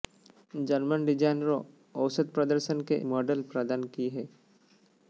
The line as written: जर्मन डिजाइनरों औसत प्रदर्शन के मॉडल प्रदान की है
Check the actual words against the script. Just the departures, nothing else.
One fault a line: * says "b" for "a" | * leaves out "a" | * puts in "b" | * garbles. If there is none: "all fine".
all fine